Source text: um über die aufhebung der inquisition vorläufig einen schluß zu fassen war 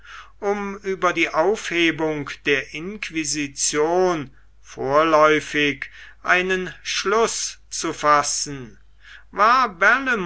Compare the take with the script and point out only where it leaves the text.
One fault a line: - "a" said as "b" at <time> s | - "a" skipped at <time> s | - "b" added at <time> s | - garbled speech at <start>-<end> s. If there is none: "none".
none